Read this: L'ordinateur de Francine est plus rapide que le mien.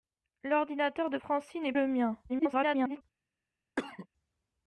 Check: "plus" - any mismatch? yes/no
yes